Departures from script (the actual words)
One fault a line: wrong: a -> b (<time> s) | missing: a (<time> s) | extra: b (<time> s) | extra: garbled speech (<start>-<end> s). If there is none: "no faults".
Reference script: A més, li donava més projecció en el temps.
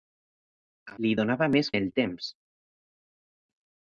missing: més (1.0 s)
missing: projecció (1.7 s)